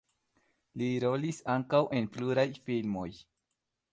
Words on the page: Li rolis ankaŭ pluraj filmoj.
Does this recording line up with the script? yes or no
no